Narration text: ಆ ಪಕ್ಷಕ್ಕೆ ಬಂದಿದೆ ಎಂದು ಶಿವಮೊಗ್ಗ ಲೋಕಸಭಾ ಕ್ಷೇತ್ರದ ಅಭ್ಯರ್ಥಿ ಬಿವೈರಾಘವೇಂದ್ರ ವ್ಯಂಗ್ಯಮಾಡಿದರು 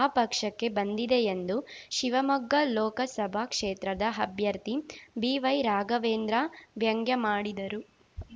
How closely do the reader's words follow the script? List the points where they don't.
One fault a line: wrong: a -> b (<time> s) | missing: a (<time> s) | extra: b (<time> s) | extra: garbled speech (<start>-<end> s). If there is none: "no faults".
no faults